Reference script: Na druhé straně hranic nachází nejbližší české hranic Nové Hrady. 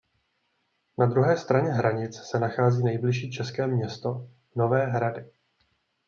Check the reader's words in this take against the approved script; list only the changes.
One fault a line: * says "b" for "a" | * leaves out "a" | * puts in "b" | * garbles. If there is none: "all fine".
* puts in "se"
* says "město" for "hranic"